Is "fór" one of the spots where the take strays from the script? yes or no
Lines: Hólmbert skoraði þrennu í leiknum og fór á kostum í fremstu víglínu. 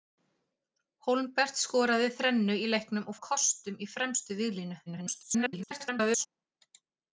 yes